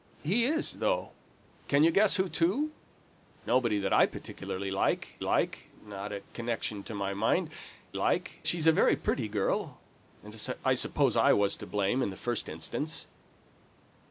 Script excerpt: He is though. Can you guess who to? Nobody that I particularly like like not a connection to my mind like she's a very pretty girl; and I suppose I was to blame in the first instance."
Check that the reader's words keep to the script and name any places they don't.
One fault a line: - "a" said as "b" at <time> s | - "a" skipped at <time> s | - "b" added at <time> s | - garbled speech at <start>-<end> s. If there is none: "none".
none